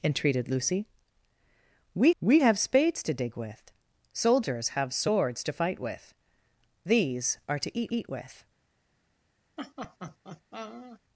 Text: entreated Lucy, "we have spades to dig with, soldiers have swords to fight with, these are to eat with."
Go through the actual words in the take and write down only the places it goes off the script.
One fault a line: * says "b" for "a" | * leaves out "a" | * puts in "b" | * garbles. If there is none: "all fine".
* puts in "we"
* puts in "eat"